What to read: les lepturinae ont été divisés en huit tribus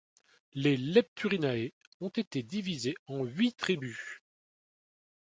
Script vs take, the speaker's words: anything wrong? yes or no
no